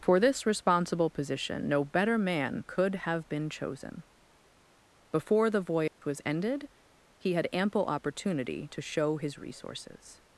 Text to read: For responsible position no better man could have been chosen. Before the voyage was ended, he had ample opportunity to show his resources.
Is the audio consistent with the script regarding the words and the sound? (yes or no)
no